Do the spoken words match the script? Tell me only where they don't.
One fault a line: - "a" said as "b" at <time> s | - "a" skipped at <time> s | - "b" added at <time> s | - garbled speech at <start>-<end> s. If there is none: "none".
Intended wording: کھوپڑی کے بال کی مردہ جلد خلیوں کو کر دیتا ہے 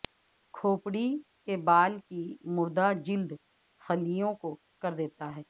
none